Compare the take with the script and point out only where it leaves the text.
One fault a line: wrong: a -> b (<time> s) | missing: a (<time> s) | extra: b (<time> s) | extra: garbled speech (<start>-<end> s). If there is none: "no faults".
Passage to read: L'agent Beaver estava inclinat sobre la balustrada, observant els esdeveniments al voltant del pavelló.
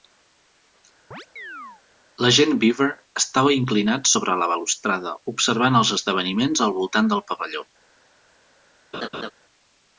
no faults